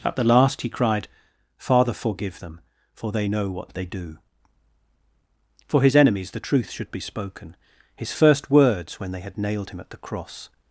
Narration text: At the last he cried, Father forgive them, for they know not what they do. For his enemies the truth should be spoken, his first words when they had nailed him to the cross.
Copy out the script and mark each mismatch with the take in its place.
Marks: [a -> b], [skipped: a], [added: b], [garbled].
At the last he cried, Father forgive them, for they know [skipped: not] what they do. For his enemies the truth should be spoken, his first words when they had nailed him [to -> at] the cross.